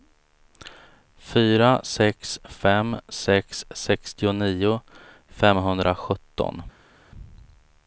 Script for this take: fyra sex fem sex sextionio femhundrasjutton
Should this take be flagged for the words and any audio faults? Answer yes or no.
no